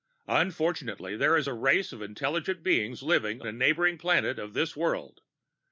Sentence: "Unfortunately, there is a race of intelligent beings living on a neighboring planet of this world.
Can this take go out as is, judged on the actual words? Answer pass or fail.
fail